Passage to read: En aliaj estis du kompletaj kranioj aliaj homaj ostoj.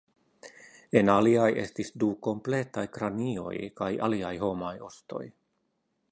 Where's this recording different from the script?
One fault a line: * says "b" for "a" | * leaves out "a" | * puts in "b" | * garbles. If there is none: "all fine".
* puts in "kaj"